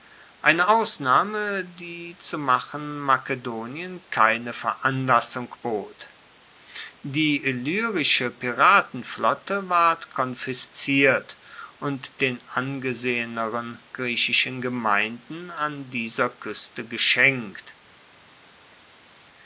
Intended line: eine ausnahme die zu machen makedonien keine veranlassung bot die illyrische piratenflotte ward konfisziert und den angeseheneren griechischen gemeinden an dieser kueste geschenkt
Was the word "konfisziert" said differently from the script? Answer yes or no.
no